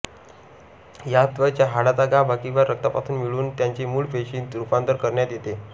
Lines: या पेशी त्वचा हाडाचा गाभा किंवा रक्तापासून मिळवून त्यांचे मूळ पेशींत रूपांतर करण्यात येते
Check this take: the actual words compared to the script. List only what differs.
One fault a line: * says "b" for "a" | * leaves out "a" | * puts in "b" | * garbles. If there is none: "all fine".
* leaves out "पेशी"